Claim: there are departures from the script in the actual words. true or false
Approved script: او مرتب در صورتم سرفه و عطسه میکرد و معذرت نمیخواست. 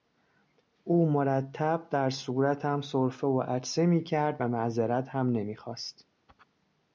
true